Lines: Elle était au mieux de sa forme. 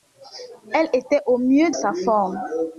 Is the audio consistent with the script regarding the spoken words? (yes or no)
no